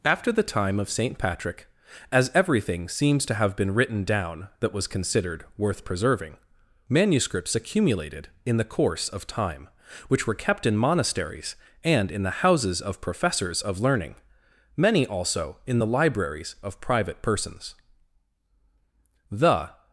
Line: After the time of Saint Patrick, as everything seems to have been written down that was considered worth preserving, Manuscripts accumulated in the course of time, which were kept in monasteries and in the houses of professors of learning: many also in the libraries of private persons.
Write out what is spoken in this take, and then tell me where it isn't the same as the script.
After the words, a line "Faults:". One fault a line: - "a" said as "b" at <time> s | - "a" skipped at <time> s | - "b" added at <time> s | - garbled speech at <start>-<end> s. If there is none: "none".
After the time of Saint Patrick, as everything seems to have been written down that was considered worth preserving, Manuscripts accumulated in the course of time, which were kept in monasteries and in the houses of professors of learning: many also in the libraries of private persons. The
Faults:
- "The" added at 19.3 s